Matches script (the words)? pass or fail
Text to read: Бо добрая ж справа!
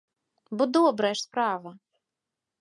pass